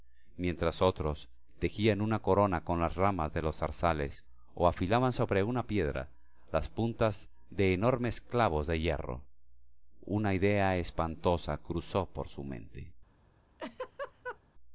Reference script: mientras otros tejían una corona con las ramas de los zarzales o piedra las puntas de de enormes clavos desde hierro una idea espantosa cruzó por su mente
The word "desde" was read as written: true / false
false